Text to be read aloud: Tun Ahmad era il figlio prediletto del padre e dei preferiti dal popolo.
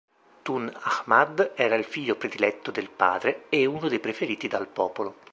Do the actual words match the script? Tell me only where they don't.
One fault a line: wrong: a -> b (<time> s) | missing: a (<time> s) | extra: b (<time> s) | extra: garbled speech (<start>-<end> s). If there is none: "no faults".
extra: uno (3.7 s)